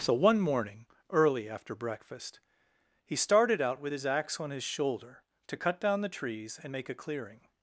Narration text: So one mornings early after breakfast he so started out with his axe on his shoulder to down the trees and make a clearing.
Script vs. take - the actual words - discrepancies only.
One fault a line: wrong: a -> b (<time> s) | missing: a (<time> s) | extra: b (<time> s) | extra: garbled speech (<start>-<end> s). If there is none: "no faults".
wrong: mornings -> morning (0.4 s)
missing: so (3.1 s)
extra: cut (5.6 s)